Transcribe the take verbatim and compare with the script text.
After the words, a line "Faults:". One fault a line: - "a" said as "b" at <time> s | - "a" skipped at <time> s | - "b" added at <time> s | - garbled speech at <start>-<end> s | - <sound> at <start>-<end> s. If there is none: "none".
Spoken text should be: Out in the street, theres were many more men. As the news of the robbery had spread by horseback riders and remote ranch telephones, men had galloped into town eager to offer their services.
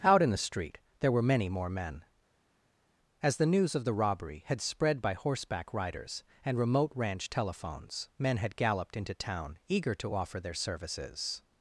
Out in the street, there were many more men. As the news of the robbery had spread by horseback riders and remote ranch telephones, men had galloped into town eager to offer their services.
Faults:
- "theres" said as "there" at 1.0 s